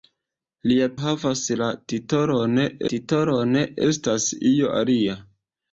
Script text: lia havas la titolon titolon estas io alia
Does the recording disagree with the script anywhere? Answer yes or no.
no